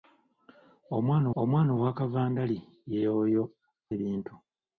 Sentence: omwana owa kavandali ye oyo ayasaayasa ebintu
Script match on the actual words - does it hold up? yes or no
no